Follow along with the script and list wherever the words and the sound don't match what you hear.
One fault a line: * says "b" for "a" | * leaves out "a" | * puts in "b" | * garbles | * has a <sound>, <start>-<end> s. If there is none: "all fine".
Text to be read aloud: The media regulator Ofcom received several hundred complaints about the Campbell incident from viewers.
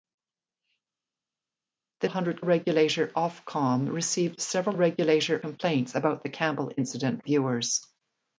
* says "hundred" for "media"
* says "regulator" for "hundred"
* leaves out "from"